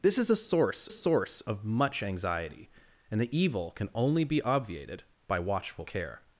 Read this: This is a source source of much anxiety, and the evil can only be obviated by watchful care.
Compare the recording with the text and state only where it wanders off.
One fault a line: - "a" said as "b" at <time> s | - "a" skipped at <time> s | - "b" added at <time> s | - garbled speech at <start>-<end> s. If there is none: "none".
none